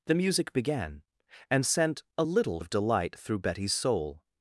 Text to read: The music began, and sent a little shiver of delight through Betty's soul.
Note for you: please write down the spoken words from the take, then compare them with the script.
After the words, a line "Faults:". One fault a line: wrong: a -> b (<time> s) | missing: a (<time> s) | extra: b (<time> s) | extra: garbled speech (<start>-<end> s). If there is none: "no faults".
The music began, and sent a little of delight through Betty's soul.
Faults:
missing: shiver (2.6 s)